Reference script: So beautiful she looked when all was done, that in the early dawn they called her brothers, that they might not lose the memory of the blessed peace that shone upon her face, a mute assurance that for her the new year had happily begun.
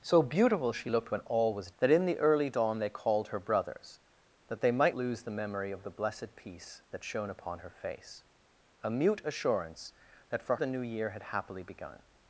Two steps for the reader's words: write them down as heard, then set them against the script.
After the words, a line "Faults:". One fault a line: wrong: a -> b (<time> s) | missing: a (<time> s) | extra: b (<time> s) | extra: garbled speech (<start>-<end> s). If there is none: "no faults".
So beautiful she looked when all was that in the early dawn they called her brothers, that they might lose the memory of the blessed peace that shone upon her face, a mute assurance that for the new year had happily begun.
Faults:
missing: done (1.7 s)
missing: not (5.0 s)
missing: her (10.6 s)